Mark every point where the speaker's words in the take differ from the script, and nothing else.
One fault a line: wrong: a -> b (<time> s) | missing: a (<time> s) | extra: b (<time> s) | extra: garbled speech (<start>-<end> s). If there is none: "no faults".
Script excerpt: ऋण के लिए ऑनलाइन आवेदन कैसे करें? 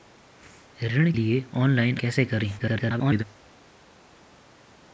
missing: के (1.1 s)
missing: आवेदन (2.0 s)
extra: garbled speech (2.6-3.2 s)